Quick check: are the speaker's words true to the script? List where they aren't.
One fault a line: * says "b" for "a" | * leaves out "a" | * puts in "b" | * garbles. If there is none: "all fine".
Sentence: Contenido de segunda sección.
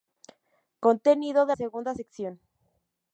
all fine